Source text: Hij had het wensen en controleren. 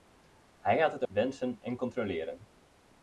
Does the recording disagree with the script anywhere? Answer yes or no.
no